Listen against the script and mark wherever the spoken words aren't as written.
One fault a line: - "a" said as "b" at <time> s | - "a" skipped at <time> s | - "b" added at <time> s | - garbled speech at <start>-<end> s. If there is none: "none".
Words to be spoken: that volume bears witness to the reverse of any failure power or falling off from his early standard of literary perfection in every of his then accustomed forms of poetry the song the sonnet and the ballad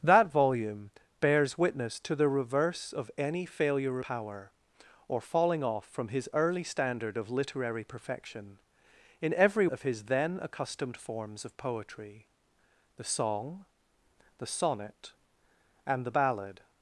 none